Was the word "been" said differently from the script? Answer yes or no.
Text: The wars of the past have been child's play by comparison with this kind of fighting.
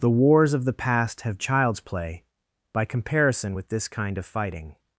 yes